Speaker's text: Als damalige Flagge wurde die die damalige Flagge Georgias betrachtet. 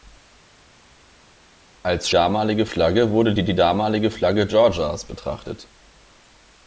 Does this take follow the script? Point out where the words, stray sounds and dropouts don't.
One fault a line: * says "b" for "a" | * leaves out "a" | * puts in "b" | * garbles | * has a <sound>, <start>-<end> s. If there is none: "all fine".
all fine